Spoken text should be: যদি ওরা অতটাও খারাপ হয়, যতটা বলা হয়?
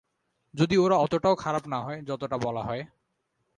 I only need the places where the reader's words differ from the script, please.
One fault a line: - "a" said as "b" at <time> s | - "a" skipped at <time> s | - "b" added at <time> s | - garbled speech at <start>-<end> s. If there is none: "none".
- "না" added at 1.7 s